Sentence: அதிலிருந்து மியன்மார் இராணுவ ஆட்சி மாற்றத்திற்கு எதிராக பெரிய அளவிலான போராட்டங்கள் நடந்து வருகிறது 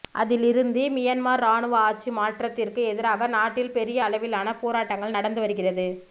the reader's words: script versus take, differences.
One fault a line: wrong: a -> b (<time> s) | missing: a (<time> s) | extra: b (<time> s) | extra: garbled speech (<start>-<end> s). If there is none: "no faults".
extra: நாட்டில் (3.4 s)